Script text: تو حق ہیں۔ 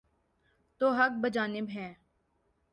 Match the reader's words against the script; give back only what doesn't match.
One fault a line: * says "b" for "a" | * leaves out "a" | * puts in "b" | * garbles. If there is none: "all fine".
* puts in "بجانب"